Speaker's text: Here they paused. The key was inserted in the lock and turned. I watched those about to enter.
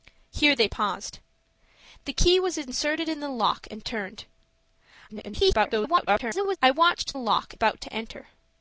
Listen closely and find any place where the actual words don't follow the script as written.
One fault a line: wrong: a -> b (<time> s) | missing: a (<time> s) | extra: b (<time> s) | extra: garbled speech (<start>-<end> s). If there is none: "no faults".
extra: garbled speech (5.1-6.6 s)
wrong: those -> lock (7.1 s)